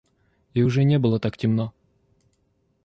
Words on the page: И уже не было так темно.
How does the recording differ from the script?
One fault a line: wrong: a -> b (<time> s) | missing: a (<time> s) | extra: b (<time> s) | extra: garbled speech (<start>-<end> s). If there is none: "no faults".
no faults